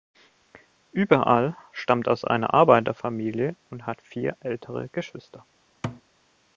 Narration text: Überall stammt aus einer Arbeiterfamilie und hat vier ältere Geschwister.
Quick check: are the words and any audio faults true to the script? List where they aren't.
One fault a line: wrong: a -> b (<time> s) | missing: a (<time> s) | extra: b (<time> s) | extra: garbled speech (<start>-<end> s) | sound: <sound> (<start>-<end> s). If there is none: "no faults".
sound: thud (5.8-6.0 s)